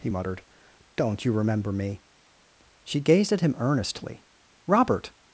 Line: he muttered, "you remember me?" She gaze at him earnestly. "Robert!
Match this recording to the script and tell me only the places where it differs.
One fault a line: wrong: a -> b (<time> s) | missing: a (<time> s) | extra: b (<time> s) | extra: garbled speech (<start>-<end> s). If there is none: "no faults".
extra: don't (1.0 s)
wrong: gaze -> gazed (3.0 s)